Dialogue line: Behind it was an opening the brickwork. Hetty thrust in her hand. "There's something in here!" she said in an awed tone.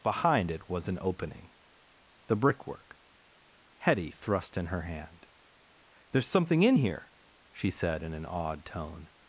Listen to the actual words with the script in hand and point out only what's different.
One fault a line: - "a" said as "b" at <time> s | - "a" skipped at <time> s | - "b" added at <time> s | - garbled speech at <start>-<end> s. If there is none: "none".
none